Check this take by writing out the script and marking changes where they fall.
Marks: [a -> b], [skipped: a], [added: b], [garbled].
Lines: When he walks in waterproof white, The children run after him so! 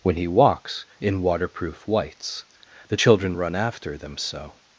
When he walks in waterproof [white, -> whites] The children run after [him -> them] so!